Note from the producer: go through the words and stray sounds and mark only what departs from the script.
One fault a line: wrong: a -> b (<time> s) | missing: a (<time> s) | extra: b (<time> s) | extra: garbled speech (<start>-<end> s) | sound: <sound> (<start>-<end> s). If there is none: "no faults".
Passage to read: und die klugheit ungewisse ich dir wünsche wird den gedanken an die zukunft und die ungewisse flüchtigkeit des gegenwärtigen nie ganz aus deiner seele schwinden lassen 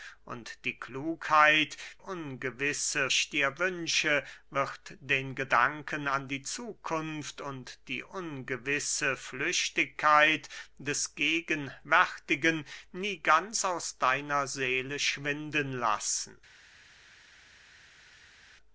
no faults